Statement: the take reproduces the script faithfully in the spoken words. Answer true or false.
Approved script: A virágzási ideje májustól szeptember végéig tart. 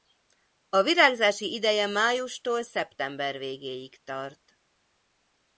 true